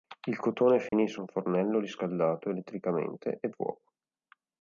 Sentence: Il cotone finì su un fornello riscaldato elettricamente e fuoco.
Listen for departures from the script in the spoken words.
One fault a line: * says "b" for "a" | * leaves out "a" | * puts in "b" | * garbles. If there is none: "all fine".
all fine